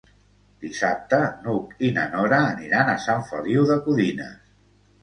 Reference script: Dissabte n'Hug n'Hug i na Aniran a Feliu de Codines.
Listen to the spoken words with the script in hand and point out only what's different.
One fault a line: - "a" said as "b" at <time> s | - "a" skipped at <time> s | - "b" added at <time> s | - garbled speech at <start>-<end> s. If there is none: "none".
- "n'Hug" skipped at 1.8 s
- "Nora" added at 2.2 s
- "Sant" added at 3.1 s